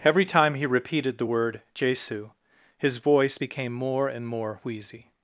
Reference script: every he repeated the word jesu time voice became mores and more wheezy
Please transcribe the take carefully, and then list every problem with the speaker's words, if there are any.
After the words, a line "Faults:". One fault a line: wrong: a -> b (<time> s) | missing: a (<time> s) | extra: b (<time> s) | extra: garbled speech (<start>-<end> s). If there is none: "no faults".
every time he repeated the word jesu his voice became more and more wheezy
Faults:
extra: time (0.2 s)
wrong: time -> his (2.8 s)
wrong: mores -> more (3.7 s)